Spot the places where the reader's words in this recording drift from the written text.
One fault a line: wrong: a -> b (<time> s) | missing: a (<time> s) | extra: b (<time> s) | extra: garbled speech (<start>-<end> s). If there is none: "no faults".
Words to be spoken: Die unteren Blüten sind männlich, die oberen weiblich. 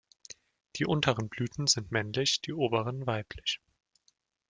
no faults